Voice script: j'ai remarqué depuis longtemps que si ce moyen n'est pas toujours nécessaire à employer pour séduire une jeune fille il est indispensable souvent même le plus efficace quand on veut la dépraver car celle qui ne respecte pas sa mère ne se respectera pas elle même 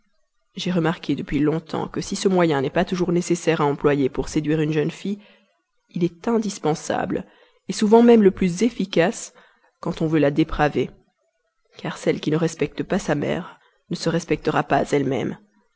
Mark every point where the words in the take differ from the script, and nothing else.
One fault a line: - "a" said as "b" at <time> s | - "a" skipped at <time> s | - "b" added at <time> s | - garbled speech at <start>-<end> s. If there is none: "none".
none